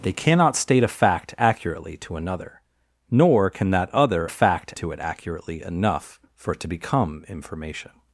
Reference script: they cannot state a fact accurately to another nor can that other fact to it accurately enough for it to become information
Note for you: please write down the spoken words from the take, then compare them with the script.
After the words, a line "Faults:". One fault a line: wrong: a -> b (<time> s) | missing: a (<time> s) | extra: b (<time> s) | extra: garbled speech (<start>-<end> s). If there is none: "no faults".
they cannot state a fact accurately to another nor can that other fact to it accurately enough for it to become information
Faults:
no faults